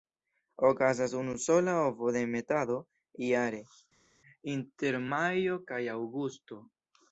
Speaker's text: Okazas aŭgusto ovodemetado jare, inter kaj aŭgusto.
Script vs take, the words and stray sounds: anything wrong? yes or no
yes